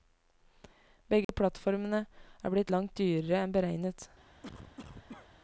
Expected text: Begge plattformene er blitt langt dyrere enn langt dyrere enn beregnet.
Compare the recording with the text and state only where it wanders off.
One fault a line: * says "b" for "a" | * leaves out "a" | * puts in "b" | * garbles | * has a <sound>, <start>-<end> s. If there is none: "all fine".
* has a dropout, 1.2-1.3 s
* leaves out "langt dyrere enn"
* has a cough, 4.4-5.3 s